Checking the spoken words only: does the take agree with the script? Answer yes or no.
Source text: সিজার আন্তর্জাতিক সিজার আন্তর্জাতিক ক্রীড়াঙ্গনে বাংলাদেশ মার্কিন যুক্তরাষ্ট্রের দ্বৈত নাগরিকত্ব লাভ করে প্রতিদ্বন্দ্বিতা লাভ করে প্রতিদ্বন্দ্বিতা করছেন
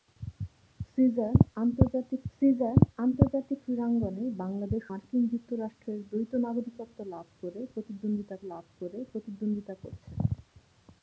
yes